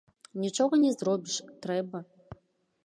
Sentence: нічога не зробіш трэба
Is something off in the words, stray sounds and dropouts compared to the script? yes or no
no